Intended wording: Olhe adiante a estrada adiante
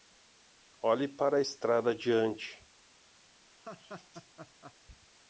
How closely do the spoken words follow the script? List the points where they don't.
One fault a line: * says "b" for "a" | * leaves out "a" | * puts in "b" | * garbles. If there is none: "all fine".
* says "para" for "adiante"